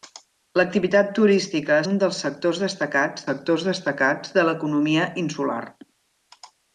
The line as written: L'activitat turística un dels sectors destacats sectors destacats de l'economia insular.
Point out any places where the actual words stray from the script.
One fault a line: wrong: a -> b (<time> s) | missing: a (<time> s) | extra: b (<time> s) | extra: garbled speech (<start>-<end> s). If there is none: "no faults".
no faults